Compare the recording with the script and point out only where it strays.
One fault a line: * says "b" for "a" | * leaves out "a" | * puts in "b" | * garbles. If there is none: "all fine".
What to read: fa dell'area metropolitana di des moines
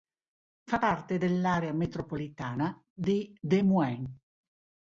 * puts in "parte"